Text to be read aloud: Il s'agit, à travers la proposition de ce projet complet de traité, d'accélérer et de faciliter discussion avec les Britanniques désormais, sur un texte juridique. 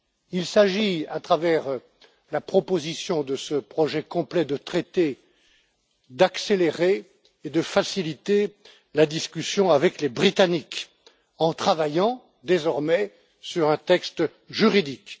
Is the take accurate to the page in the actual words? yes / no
no